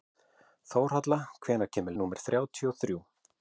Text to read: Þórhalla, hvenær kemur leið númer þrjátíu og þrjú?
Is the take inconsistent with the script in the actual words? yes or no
yes